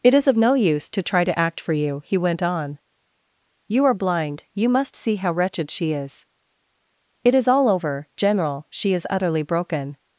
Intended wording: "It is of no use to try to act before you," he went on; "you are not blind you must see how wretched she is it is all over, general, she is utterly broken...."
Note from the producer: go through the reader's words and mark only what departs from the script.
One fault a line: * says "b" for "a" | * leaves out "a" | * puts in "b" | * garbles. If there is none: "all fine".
* says "for" for "before"
* leaves out "not"